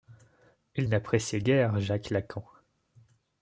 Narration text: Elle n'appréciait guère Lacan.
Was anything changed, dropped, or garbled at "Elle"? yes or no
yes